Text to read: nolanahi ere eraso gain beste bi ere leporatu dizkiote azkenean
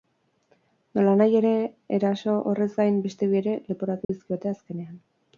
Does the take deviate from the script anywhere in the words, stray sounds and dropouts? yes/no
yes